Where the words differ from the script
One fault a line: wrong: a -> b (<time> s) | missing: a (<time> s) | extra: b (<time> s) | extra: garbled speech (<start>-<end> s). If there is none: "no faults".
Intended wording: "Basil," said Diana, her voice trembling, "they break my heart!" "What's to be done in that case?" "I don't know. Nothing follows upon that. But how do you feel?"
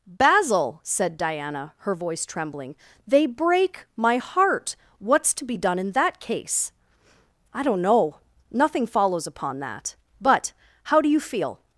no faults